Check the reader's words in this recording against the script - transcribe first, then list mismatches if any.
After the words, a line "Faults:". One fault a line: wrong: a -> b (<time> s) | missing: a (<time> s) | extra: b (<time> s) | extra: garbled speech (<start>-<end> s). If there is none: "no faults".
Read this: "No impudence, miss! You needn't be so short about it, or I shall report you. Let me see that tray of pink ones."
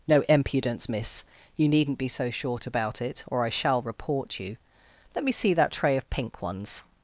"No impudence, miss! You needn't be so short about it, or I shall report you. Let me see that tray of pink ones."
Faults:
no faults